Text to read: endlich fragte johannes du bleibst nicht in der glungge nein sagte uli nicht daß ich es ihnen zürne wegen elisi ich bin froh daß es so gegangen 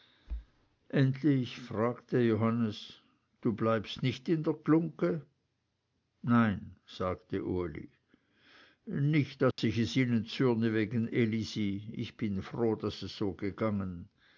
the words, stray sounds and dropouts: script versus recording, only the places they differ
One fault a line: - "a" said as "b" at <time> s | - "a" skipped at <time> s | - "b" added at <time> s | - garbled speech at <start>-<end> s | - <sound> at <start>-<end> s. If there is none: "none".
- dropout at 9.5-9.6 s